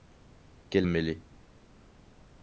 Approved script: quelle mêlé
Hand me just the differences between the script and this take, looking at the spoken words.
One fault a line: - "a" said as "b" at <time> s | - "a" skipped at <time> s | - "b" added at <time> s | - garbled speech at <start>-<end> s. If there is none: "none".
none